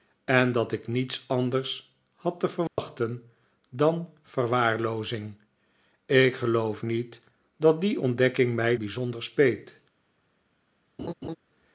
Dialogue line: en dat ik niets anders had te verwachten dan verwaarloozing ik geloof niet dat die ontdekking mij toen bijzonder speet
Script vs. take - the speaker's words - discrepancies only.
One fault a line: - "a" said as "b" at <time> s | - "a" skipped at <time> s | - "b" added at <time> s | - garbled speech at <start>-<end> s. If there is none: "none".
- "toen" skipped at 8.8 s